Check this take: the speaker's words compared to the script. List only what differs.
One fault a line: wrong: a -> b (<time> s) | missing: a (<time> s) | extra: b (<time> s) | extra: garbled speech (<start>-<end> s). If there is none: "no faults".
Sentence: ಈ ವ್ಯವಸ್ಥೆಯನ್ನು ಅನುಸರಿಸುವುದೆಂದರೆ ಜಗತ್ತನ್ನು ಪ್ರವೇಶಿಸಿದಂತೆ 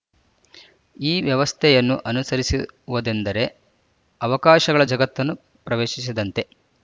extra: ಅವಕಾಶಗಳ (4.2 s)